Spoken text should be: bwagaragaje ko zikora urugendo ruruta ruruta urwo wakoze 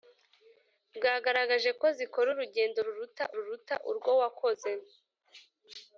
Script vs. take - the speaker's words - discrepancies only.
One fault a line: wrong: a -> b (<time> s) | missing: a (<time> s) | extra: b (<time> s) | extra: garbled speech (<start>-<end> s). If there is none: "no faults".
no faults